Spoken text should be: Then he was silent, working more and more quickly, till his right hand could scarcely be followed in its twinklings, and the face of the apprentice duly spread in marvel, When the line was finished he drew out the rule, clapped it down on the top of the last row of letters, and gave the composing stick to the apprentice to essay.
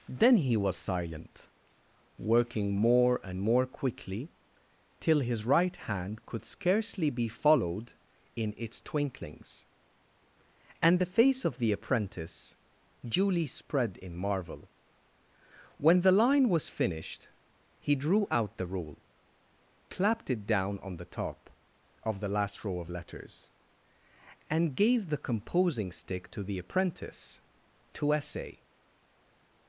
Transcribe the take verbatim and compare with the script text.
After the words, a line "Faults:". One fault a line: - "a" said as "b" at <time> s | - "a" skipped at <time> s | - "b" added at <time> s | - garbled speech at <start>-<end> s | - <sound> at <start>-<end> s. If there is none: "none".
Then he was silent, working more and more quickly, till his right hand could scarcely be followed in its twinklings, and the face of the apprentice duly spread in marvel, When the line was finished he drew out the rule, clapped it down on the top of the last row of letters, and gave the composing stick to the apprentice to essay.
Faults:
none